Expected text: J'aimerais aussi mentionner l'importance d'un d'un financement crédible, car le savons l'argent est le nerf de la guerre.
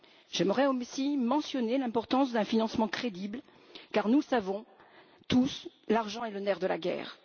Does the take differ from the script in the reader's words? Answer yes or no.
yes